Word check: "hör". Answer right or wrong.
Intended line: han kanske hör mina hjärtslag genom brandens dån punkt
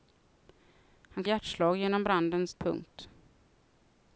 wrong